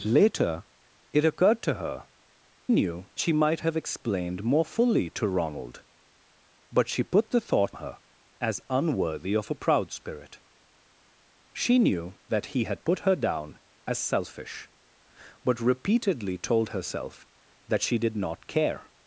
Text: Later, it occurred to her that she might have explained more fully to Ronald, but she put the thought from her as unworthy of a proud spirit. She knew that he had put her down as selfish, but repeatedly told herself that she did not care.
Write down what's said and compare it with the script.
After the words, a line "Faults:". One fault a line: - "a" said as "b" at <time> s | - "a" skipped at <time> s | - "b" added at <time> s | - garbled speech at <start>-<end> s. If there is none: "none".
Later, it occurred to her knew she might have explained more fully to Ronald, but she put the thought her as unworthy of a proud spirit. She knew that he had put her down as selfish, but repeatedly told herself that she did not care.
Faults:
- "that" said as "knew" at 2.7 s
- "from" skipped at 7.8 s